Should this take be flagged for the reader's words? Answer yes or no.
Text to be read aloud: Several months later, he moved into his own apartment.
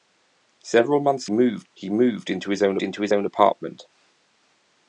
yes